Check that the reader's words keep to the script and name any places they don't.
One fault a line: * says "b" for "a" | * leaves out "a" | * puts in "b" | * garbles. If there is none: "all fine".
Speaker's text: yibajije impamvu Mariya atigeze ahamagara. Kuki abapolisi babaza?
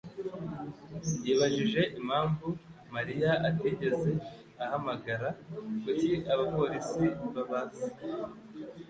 all fine